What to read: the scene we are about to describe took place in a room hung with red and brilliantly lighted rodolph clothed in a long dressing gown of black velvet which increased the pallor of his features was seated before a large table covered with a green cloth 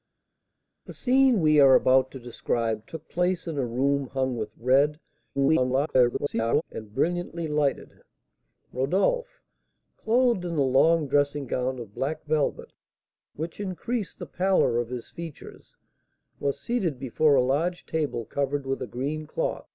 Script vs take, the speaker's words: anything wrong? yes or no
yes